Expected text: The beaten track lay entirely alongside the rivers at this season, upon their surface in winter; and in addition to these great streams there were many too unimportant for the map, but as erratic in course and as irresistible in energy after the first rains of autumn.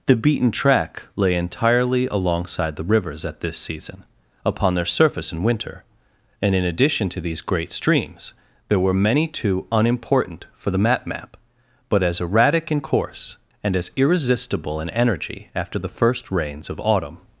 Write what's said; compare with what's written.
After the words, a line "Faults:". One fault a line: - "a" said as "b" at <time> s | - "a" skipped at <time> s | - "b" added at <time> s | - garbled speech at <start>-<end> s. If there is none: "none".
The beaten track lay entirely alongside the rivers at this season, upon their surface in winter; and in addition to these great streams there were many too unimportant for the map map, but as erratic in course and as irresistible in energy after the first rains of autumn.
Faults:
- "map" added at 11.1 s